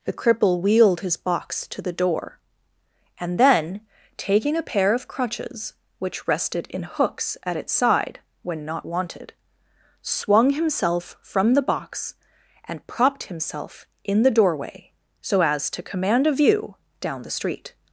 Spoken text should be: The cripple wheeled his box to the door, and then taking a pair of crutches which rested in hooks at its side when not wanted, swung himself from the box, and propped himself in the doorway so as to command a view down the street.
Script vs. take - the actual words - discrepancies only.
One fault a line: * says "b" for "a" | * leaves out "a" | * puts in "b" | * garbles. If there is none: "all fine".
all fine